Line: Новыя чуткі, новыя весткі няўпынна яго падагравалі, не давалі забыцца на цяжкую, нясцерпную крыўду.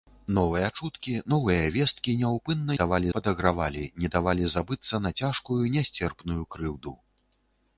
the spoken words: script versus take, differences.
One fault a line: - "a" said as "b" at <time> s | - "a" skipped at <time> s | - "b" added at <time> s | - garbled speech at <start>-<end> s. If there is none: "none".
- "яго" said as "давалі" at 2.8 s